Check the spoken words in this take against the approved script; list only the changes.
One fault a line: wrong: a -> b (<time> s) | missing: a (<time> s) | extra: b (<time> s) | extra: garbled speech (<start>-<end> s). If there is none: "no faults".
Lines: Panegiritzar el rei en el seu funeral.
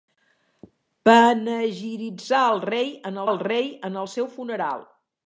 extra: rei en el (3.5 s)